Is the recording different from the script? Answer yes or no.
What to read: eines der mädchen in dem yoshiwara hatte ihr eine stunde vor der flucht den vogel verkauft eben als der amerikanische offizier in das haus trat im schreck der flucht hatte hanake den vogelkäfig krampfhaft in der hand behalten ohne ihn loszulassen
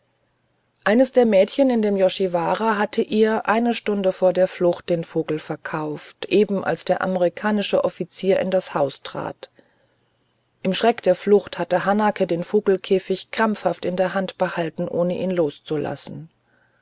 no